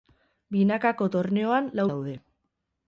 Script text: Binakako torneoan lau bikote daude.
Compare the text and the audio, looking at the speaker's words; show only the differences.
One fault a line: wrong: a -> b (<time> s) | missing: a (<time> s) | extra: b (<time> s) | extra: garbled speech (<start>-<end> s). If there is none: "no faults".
missing: bikote (1.9 s)